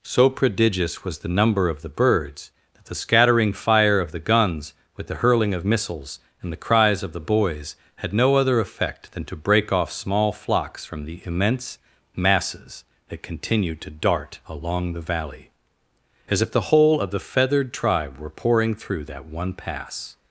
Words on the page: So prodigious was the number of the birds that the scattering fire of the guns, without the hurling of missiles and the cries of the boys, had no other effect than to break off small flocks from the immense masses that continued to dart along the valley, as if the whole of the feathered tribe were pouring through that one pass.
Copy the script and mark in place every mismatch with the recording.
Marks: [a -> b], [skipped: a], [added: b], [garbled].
So prodigious was the number of the birds that the scattering fire of the guns, [without -> with] the hurling of missiles and the cries of the boys, had no other effect than to break off small flocks from the immense masses that continued to dart along the valley, as if the whole of the feathered tribe were pouring through that one pass.